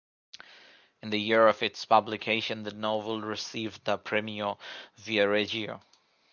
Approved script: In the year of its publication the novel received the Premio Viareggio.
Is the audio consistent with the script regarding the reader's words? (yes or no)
yes